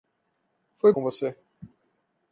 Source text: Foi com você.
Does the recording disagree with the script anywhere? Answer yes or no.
no